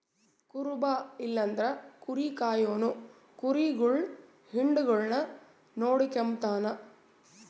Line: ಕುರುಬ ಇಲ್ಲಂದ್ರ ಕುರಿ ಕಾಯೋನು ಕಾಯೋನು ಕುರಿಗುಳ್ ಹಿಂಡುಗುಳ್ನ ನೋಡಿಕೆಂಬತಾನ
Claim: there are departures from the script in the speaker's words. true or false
true